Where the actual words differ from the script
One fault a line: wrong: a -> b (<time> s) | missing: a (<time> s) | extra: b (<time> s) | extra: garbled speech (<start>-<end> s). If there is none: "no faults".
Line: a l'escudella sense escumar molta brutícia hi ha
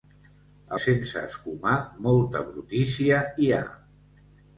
missing: l'escudella (0.8 s)